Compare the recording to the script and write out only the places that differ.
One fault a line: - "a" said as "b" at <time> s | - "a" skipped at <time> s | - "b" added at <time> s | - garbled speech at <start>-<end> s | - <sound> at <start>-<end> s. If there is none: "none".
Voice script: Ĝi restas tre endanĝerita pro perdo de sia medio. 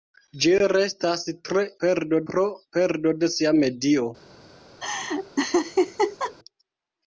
- "endanĝerita" said as "perdo" at 1.8 s
- laugh at 4.8-6.3 s